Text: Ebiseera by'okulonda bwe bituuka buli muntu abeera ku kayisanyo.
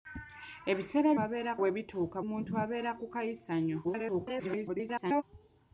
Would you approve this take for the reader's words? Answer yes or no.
no